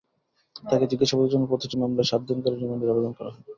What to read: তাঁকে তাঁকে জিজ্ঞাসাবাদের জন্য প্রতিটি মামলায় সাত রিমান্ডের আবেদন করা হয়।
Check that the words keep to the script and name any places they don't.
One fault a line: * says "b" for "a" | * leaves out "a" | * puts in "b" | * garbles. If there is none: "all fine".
* leaves out "তাঁকে"
* puts in "দিন করে"